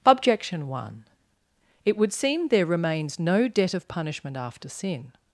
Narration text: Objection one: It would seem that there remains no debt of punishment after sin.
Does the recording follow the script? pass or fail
fail